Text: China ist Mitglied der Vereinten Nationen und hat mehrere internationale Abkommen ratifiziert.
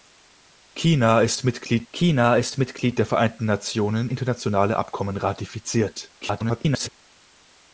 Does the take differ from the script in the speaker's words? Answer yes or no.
yes